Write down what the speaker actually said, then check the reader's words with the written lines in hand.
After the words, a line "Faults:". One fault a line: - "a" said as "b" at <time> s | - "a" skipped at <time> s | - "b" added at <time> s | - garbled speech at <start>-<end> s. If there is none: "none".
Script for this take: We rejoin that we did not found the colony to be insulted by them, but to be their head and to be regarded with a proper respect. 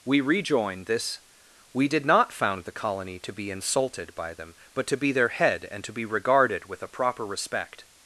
We rejoin this we did not found the colony to be insulted by them, but to be their head and to be regarded with a proper respect.
Faults:
- "that" said as "this" at 0.8 s